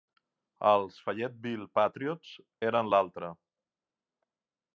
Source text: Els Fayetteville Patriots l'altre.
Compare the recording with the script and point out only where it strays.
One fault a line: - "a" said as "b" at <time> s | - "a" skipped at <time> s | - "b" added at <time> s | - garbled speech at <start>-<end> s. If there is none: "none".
- "eren" added at 2.7 s